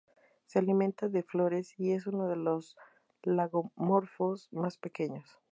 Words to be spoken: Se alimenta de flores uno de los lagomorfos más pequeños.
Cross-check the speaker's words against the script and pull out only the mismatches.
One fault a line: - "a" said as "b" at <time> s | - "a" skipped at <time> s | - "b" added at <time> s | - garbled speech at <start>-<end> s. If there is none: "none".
- "y es" added at 1.8 s